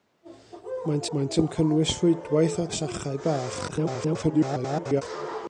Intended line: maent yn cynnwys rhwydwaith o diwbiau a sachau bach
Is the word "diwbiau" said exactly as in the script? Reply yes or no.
no